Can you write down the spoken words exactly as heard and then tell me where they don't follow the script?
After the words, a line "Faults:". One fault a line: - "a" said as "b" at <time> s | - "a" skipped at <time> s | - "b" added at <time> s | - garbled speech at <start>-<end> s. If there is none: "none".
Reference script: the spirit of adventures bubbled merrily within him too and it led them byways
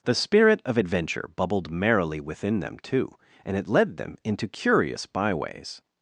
the spirit of adventure bubbled merrily within them too and it led them into curious byways
Faults:
- "adventures" said as "adventure" at 0.8 s
- "him" said as "them" at 2.6 s
- "into curious" added at 4.2 s